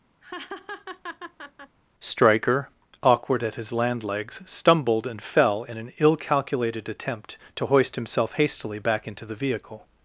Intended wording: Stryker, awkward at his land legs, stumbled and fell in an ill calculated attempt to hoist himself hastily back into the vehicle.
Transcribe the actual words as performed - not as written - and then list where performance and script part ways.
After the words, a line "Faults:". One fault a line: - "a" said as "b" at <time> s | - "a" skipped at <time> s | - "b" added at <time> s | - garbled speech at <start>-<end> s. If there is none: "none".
Stryker, awkward at his land legs, stumbled and fell in an ill calculated attempt to hoist himself hastily back into the vehicle.
Faults:
none